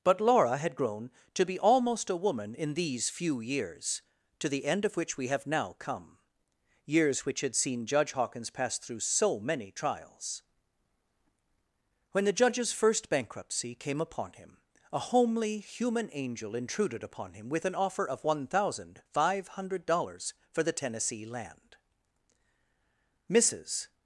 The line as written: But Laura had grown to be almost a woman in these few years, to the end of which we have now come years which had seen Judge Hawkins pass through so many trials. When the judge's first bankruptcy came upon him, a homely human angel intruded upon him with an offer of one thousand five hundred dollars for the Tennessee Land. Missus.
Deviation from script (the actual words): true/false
false